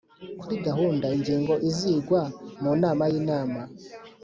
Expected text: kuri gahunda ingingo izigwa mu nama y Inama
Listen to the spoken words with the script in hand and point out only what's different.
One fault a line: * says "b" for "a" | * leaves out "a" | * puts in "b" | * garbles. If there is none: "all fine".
all fine